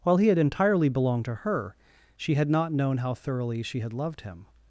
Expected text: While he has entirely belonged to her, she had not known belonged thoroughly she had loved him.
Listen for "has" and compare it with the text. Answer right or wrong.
wrong